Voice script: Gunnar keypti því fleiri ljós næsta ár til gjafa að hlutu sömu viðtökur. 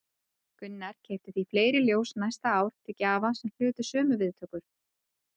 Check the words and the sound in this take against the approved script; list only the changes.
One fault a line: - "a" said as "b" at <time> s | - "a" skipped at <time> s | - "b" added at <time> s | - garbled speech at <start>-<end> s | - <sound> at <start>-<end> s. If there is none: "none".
- "að" said as "sem" at 3.4 s